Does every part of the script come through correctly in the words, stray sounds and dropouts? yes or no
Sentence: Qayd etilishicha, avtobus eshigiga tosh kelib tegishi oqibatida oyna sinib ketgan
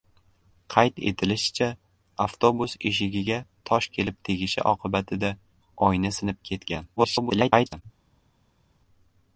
no